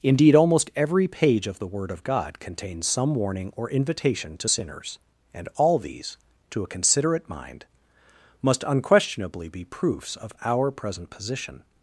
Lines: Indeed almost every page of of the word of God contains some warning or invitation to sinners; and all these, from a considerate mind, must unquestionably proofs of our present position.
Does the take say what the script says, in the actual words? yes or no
no